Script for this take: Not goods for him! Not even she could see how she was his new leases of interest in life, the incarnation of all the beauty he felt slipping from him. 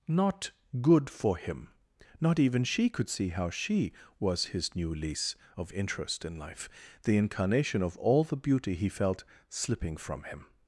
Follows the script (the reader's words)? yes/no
no